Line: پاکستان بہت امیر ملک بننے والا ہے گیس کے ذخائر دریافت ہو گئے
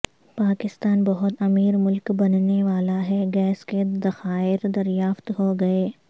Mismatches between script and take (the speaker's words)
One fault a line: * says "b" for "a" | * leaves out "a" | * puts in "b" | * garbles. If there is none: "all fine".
all fine